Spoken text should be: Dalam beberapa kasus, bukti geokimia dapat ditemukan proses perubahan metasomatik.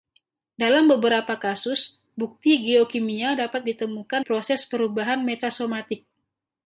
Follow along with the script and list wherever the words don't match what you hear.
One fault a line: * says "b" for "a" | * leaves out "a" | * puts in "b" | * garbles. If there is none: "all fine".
all fine